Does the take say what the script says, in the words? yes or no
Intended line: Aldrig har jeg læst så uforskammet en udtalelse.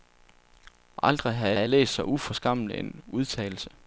no